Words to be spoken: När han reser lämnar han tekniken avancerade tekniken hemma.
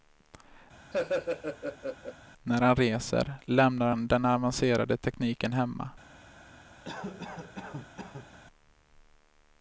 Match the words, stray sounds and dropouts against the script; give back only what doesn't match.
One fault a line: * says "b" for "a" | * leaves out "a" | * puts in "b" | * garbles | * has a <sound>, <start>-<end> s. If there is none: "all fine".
* has a laugh, 0.9-2.2 s
* says "den" for "tekniken"
* has a cough, 6.8-8.4 s